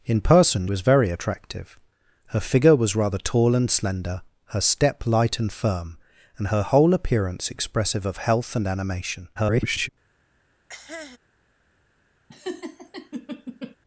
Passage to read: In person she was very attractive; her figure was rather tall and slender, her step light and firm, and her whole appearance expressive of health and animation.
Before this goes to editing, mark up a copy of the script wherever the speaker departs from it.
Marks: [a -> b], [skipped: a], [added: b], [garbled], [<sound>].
In person [skipped: she] was very attractive; her figure was rather tall and slender, her step light and firm, and her whole appearance expressive of health and animation. [garbled] [cough] [laugh]